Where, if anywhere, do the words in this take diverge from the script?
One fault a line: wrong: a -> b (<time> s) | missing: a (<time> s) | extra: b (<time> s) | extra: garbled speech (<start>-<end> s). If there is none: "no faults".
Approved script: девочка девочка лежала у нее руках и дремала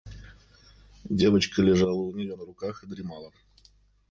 missing: девочка (1.6 s)
extra: на (2.3 s)